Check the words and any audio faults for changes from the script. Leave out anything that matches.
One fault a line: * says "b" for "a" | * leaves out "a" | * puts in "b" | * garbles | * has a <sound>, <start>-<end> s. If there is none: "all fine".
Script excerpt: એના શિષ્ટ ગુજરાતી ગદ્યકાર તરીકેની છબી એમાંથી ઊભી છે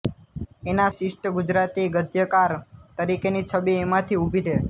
all fine